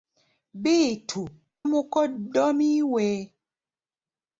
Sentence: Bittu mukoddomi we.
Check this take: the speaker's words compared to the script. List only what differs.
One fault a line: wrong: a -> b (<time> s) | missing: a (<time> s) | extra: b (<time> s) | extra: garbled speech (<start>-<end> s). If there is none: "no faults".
no faults